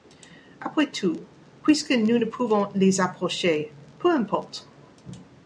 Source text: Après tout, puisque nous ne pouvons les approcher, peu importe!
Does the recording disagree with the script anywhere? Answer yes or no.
no